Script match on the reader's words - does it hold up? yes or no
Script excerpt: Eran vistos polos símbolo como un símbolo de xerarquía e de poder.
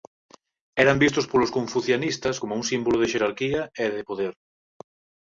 no